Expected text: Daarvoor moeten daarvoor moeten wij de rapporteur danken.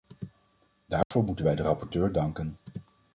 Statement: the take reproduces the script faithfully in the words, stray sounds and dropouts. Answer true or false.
false